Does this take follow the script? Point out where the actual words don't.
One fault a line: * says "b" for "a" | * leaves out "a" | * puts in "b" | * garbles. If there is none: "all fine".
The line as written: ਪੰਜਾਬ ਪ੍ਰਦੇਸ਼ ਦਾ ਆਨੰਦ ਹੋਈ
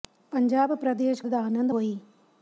all fine